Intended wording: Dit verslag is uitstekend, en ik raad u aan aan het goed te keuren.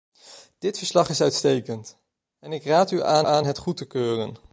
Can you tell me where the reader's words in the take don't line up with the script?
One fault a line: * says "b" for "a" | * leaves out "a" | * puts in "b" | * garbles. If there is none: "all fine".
all fine